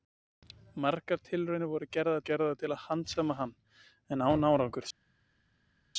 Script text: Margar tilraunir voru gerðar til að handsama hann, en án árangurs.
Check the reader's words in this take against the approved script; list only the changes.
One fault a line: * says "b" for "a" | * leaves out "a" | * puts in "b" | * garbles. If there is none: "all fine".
* puts in "gerðar"